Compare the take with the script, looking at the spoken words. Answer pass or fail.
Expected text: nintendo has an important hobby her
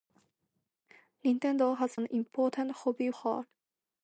pass